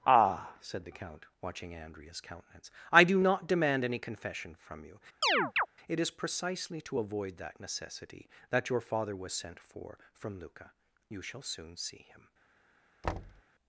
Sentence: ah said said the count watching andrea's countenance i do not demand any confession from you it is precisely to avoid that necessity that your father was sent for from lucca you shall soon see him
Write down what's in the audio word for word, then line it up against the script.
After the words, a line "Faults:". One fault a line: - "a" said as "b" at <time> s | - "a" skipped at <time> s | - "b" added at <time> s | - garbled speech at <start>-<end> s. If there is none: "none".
ah said the count watching andrea's countenance i do not demand any confession from you it is precisely to avoid that necessity that your father was sent for from lucca you shall soon see him
Faults:
- "said" skipped at 0.8 s